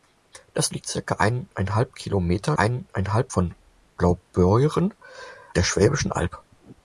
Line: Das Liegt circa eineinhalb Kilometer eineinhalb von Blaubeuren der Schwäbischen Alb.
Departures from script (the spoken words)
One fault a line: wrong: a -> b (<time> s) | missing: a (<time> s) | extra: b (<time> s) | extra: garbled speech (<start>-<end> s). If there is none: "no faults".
no faults